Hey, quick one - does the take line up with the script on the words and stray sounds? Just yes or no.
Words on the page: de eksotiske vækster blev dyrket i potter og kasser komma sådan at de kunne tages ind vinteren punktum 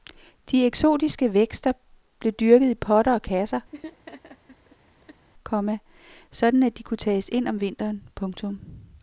no